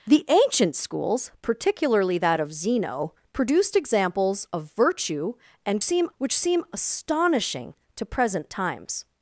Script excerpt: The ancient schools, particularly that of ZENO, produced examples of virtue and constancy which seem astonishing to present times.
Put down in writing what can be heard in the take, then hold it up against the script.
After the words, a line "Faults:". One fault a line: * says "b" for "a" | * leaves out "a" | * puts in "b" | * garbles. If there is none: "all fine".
The ancient schools, particularly that of ZENO, produced examples of virtue and seem which seem astonishing to present times.
Faults:
* says "seem" for "constancy"